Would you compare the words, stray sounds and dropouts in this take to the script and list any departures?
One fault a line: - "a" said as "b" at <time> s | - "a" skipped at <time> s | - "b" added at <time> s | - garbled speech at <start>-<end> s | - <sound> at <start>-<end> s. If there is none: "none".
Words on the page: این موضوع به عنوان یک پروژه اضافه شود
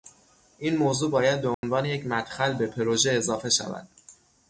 - "باید" added at 1.1 s
- dropout at 1.5-1.6 s
- "مدخل به" added at 2.1 s